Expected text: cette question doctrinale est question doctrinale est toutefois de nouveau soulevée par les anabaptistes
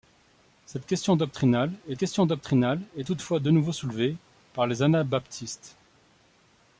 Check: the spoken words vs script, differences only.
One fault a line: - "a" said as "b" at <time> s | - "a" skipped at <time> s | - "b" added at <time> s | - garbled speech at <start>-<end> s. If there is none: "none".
none